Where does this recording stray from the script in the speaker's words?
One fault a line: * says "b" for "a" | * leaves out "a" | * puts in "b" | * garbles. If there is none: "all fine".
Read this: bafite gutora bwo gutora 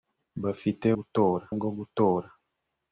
all fine